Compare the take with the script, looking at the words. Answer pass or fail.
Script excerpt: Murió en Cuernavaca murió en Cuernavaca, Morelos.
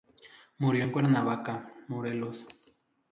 fail